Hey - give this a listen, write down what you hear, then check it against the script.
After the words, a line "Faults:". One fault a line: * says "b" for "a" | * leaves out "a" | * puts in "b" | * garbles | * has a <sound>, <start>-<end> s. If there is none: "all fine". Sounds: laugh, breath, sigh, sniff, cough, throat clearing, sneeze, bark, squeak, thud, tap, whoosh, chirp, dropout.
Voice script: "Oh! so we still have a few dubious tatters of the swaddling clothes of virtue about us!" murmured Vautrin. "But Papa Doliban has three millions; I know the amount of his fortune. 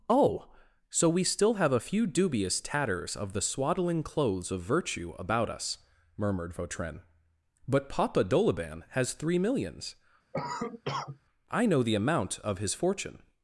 "Oh! so we still have a few dubious tatters of the swaddling clothes of virtue about us!" murmured Vautrin. "But Papa Doliban has three millions; I know the amount of his fortune.
Faults:
* has a cough, 10.3-11.2 s